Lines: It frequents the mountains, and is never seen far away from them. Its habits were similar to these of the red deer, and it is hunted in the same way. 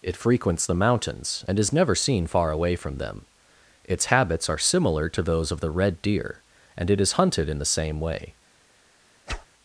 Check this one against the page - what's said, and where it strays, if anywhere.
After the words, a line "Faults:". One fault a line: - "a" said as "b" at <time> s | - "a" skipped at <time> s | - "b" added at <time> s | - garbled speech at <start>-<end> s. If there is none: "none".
It frequents the mountains, and is never seen far away from them. Its habits are similar to those of the red deer, and it is hunted in the same way.
Faults:
- "were" said as "are" at 4.5 s
- "these" said as "those" at 5.2 s